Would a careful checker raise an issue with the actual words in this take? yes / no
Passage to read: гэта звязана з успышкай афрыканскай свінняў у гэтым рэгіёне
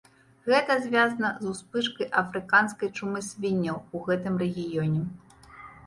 yes